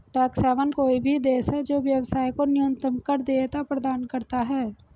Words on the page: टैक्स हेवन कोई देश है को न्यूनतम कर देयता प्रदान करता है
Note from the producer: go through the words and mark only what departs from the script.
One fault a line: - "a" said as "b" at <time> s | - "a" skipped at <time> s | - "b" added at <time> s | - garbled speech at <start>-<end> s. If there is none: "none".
- "भी" added at 1.0 s
- "जो व्यवसाय" added at 1.6 s